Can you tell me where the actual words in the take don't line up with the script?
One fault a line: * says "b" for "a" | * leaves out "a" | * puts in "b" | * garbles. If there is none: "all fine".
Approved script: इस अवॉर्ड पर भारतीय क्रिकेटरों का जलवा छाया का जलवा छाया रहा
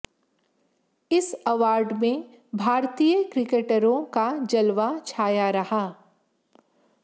* says "में" for "पर"
* leaves out "का जलवा छाया"